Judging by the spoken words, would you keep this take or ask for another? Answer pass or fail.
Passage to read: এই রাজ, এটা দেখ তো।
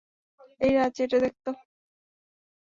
pass